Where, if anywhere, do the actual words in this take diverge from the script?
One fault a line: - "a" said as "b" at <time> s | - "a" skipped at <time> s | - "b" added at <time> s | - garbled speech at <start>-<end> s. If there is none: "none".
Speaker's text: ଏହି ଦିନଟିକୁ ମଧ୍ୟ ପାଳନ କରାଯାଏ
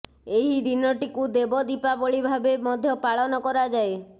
- "ଦେବ ଦୀପାବଳି ଭାବେ" added at 1.3 s